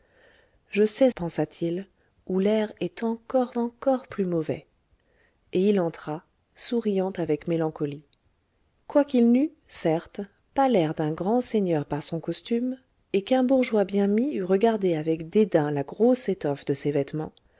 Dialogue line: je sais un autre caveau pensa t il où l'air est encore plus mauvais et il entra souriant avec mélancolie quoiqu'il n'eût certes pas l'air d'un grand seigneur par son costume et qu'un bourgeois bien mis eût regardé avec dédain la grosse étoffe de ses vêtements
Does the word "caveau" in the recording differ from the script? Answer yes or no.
yes